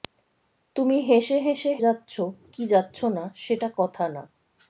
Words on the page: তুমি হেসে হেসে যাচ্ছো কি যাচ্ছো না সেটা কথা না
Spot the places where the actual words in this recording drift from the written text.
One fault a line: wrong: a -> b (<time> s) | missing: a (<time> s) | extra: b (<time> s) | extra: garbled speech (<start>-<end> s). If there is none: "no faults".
no faults